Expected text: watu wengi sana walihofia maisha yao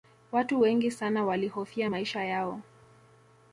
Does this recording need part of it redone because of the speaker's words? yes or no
no